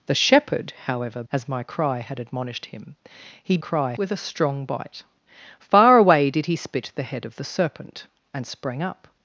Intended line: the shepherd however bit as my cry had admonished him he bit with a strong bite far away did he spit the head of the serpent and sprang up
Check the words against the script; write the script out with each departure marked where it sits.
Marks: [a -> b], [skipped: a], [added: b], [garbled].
the shepherd however [skipped: bit] as my cry had admonished him he [bit -> cry] with a strong bite far away did he spit the head of the serpent and sprang up